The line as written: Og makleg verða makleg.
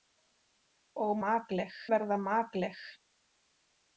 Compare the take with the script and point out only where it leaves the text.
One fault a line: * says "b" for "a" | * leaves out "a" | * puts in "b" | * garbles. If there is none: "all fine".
all fine